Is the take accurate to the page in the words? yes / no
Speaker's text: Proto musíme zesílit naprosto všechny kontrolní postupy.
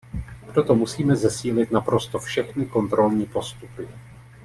yes